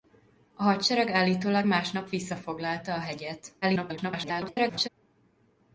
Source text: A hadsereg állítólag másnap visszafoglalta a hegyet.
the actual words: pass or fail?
fail